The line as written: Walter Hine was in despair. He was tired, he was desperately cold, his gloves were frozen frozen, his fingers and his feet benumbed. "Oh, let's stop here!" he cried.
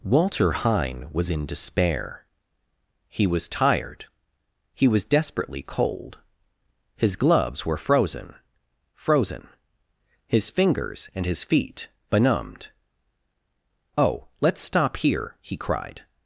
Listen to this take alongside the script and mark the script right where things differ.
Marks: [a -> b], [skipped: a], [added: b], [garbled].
Walter Hine was in despair. He was tired, he was desperately cold, his gloves were frozen frozen, his fingers and his feet benumbed. "Oh, let's stop here!" he cried.